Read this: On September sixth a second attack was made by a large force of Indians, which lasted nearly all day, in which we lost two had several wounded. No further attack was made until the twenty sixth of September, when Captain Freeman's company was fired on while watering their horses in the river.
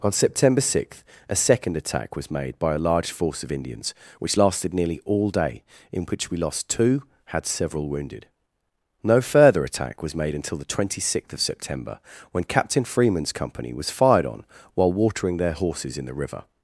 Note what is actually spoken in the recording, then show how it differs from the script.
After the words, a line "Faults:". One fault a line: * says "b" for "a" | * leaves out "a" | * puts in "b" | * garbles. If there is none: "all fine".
On September sixth a second attack was made by a large force of Indians, which lasted nearly all day, in which we lost two had several wounded. No further attack was made until the twenty sixth of September, when Captain Freeman's company was fired on while watering their horses in the river.
Faults:
all fine